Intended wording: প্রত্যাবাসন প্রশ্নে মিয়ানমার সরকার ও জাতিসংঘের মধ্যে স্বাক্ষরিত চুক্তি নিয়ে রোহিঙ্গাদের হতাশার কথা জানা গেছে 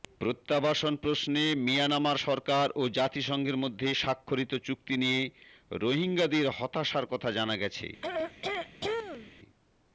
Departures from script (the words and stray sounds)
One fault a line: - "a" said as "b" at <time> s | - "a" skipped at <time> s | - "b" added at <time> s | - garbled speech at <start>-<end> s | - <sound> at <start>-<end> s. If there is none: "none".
- throat clearing at 8.0-9.3 s